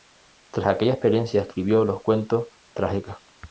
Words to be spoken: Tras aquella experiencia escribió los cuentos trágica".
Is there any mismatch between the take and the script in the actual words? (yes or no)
no